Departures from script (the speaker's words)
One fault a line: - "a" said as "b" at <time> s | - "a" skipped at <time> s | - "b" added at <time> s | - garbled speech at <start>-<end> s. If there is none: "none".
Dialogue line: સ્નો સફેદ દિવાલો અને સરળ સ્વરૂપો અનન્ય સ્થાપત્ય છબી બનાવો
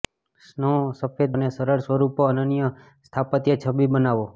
- "દિવાલો" skipped at 1.4 s